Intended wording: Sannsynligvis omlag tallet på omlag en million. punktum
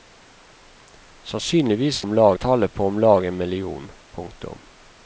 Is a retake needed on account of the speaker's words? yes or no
no